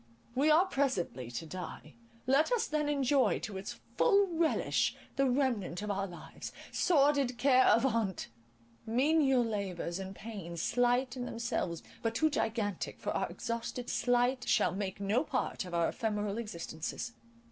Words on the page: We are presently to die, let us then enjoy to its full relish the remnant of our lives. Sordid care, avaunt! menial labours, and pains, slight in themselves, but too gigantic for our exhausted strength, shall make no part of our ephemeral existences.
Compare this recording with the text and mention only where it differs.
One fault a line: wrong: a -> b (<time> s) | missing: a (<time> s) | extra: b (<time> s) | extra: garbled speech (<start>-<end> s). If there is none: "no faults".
wrong: strength -> slight (13.9 s)